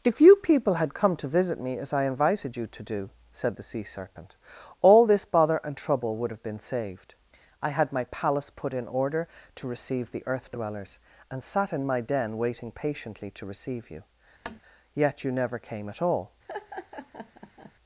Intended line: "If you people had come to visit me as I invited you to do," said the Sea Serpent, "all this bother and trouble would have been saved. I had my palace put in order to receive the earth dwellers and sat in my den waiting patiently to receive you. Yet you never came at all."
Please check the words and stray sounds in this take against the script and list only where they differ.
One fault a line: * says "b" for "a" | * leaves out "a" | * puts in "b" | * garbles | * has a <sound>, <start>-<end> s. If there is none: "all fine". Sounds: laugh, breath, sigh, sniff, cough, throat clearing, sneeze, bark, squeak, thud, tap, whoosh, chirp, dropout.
* has a tap, 14.5-14.6 s
* has a laugh, 16.5-17.7 s